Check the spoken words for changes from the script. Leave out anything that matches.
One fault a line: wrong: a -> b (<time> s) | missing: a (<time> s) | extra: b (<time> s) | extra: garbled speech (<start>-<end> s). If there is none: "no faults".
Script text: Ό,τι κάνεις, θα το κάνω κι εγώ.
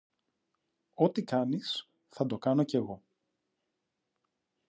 no faults